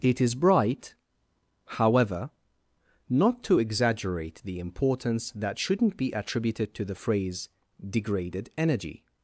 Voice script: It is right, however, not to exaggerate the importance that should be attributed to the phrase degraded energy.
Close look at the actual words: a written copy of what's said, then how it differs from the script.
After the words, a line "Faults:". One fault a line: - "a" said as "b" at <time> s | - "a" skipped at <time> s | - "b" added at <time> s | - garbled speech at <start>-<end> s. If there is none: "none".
It is bright, however, not to exaggerate the importance that shouldn't be attributed to the phrase degraded energy.
Faults:
- "right" said as "bright" at 0.3 s
- "should" said as "shouldn't" at 5.6 s